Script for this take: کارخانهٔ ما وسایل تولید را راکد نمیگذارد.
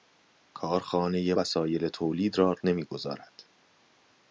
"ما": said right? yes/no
no